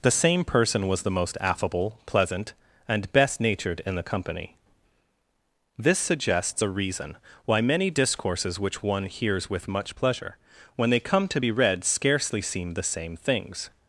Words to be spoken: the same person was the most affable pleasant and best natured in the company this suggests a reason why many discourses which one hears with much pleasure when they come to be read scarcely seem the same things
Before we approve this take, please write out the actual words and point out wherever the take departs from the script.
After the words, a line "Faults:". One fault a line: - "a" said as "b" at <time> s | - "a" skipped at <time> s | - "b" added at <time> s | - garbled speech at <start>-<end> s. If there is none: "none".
the same person was the most affable pleasant and best natured in the company this suggests a reason why many discourses which one hears with much pleasure when they come to be read scarcely seem the same things
Faults:
none